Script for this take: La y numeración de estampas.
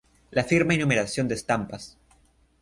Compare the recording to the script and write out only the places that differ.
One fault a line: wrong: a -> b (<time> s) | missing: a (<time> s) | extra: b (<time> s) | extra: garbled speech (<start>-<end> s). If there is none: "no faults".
extra: firma (0.4 s)